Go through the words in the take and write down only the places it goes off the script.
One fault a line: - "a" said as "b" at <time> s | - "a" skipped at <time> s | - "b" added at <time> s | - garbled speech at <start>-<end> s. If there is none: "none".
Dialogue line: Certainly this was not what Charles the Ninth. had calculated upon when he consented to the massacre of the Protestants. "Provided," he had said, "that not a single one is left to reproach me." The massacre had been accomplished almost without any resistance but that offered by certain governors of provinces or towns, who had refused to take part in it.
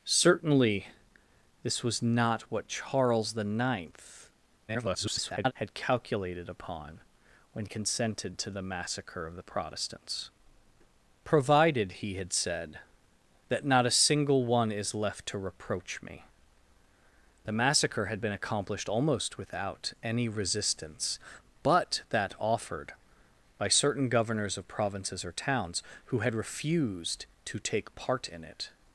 - garbled speech at 4.7-5.5 s
- "he" skipped at 7.6 s